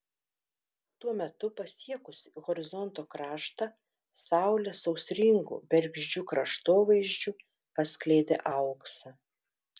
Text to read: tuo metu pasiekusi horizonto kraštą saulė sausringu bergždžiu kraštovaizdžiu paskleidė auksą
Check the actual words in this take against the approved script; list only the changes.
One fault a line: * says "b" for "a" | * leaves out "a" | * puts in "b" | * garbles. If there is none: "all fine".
all fine